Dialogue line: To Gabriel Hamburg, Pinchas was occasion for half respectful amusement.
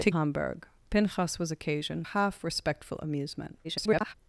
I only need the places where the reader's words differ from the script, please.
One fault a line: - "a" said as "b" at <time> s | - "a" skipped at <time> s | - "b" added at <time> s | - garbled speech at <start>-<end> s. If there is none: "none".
- "Gabriel" skipped at 0.1 s
- "for" skipped at 2.0 s
- garbled speech at 3.6-4.1 s